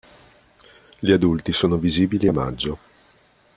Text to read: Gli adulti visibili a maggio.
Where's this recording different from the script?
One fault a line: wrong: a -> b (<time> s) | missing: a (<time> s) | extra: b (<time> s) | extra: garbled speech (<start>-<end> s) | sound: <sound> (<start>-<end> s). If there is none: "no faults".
extra: sono (1.5 s)